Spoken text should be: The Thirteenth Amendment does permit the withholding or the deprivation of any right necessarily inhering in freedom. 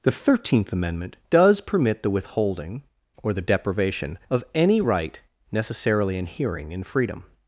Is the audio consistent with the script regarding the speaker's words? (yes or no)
yes